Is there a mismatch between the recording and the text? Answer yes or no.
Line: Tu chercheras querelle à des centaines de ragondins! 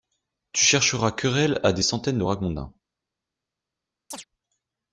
no